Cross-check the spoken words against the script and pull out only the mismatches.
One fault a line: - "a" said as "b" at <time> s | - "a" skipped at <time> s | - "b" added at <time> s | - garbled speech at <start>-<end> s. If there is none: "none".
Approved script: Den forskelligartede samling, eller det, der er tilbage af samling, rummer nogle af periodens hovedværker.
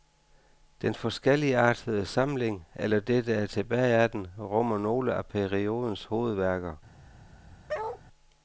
- "samling" said as "den" at 4.1 s